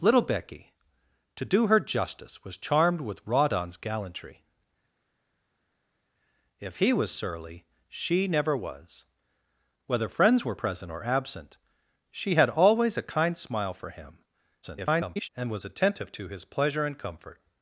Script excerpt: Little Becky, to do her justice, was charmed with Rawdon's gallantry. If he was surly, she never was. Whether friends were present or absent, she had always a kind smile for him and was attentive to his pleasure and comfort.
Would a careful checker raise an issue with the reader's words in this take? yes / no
yes